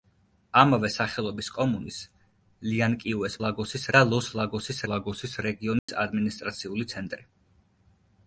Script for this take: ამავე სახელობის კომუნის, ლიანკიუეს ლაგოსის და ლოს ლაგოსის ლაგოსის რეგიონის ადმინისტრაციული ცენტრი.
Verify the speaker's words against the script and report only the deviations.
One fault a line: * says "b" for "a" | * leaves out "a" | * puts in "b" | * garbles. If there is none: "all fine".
all fine